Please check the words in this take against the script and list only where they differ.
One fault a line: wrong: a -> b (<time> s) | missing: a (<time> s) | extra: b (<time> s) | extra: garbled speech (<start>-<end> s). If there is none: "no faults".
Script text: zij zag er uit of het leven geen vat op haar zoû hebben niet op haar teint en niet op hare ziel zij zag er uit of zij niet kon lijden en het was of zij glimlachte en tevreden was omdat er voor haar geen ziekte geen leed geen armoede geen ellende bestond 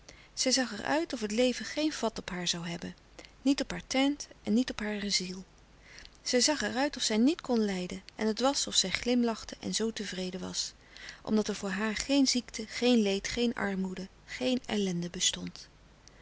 extra: zoo (9.8 s)